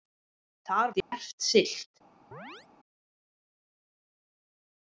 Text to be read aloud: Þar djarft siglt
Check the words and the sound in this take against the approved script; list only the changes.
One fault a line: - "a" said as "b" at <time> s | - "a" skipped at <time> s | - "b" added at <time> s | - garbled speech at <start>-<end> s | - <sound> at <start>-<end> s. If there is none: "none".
- dropout at 1.0-1.1 s
- chirp at 2.3-2.7 s